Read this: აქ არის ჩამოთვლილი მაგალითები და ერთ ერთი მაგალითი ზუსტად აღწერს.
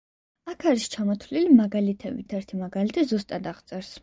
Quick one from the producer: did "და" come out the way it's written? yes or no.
no